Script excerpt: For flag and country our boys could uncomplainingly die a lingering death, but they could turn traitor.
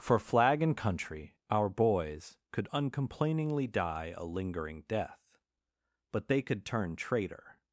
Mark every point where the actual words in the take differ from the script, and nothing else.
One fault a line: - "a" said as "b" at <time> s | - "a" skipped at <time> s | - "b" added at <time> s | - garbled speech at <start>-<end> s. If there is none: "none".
none